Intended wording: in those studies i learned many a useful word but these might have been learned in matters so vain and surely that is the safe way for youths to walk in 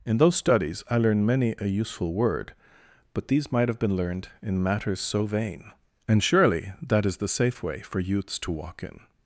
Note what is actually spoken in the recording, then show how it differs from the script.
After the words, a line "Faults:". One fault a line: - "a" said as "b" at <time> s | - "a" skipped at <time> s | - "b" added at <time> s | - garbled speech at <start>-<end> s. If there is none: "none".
in those studies i learned many a useful word but these might have been learned in matters so vain and surely that is the safe way for youths to walk in
Faults:
none